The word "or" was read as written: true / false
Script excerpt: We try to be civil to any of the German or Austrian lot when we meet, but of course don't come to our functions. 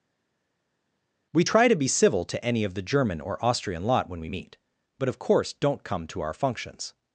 true